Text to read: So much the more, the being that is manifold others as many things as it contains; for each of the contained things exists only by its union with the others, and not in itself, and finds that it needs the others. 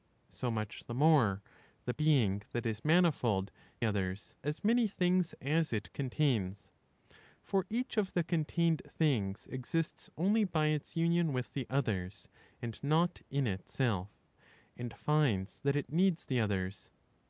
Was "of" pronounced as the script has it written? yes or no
yes